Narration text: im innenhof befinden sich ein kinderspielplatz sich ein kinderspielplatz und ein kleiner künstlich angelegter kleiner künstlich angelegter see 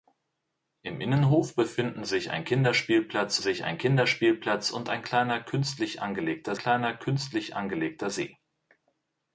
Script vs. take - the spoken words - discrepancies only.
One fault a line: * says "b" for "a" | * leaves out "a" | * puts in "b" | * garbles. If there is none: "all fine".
all fine